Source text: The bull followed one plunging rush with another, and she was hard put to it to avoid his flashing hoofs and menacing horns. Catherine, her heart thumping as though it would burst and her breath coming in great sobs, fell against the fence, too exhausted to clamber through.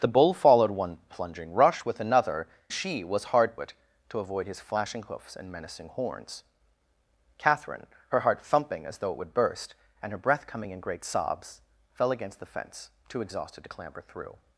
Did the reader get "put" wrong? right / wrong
wrong